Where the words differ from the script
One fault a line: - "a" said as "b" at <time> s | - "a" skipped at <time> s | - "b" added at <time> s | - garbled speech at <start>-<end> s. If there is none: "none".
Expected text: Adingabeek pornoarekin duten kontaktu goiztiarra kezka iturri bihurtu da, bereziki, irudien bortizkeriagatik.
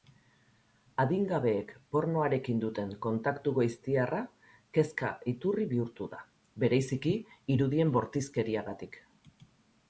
none